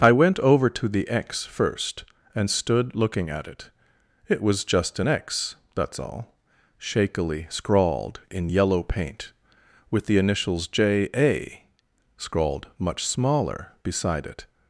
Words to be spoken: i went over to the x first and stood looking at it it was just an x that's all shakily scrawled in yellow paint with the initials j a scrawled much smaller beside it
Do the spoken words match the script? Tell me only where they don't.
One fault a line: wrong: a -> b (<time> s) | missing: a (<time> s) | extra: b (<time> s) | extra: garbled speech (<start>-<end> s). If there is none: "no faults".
no faults